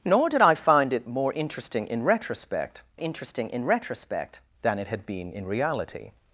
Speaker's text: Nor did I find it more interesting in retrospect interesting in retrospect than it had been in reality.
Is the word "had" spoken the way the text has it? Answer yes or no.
yes